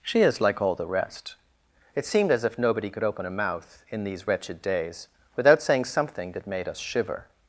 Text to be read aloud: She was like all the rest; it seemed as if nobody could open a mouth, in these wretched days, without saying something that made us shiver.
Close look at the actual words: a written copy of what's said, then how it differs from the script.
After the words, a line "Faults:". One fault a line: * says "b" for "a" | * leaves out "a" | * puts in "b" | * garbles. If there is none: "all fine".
She is like all the rest; it seemed as if nobody could open a mouth, in these wretched days, without saying something that made us shiver.
Faults:
* says "is" for "was"